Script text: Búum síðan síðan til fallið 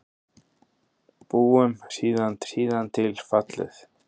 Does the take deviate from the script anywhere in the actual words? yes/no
no